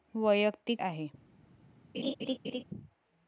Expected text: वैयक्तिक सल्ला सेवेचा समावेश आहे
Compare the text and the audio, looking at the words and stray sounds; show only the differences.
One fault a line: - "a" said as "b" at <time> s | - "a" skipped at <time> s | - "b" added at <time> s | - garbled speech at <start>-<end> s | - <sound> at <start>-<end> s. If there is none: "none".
- "सल्ला सेवेचा समावेश" skipped at 0.8 s
- laugh at 1.9-2.6 s